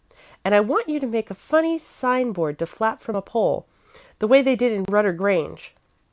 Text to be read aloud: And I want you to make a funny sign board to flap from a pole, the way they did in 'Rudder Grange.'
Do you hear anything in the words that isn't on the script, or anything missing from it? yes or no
no